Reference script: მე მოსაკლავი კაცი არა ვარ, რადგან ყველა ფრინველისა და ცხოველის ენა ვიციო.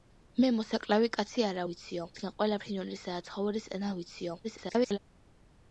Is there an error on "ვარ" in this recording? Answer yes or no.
yes